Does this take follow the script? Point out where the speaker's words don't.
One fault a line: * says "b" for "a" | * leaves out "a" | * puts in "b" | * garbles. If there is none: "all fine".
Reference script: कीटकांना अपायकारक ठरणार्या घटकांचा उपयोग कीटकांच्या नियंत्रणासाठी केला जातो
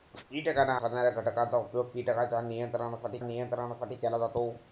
* leaves out "अपायकारक"
* puts in "नियंत्रणासाठी"